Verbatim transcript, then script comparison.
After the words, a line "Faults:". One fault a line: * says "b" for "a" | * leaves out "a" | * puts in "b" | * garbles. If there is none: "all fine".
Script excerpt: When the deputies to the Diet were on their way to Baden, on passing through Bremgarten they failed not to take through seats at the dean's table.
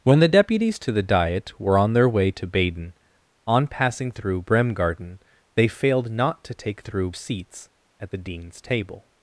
When the deputies to the Diet were on their way to Baden, on passing through Bremgarten they failed not to take through seats at the dean's table.
Faults:
all fine